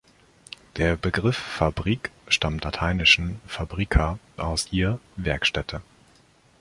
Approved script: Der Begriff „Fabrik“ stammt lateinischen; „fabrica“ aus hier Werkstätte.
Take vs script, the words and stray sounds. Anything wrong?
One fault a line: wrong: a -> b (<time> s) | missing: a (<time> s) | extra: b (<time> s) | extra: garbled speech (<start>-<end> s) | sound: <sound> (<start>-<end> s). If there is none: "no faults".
no faults